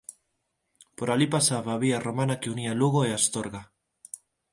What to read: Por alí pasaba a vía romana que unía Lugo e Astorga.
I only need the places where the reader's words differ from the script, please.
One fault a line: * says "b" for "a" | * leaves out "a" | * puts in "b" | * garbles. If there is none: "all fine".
all fine